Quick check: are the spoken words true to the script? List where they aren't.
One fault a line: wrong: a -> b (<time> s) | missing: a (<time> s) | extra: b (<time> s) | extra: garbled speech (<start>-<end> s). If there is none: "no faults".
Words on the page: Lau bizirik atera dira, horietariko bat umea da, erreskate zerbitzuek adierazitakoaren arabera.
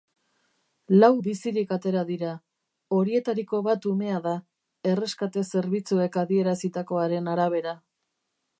no faults